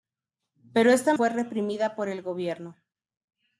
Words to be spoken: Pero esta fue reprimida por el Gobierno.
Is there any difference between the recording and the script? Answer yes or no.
no